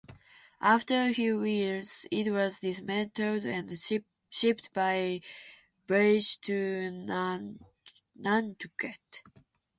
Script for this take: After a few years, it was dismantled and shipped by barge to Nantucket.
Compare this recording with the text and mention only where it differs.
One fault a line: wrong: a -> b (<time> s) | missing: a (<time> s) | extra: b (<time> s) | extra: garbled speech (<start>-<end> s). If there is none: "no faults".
no faults